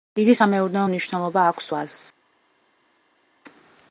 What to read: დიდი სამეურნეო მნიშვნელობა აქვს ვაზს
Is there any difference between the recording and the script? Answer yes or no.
no